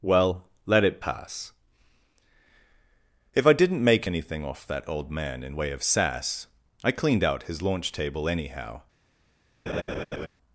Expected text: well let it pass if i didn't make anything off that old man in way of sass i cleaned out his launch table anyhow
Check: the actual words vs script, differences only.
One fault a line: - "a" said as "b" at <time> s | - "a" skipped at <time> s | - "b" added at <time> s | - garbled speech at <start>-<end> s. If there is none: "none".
none